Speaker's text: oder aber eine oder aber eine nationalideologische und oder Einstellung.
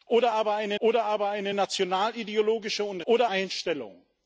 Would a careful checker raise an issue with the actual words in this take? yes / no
no